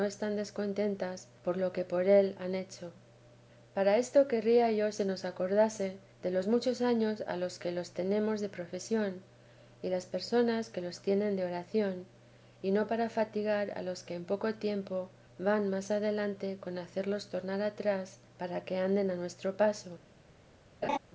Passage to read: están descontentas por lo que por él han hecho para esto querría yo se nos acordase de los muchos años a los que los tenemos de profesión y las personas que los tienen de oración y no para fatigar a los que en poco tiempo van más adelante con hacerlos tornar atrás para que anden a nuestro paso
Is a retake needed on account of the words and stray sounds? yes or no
yes